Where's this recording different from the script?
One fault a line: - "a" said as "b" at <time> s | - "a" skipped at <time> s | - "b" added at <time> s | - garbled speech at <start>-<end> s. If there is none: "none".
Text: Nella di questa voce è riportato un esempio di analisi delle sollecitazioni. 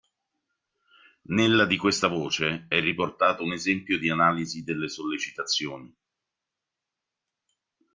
none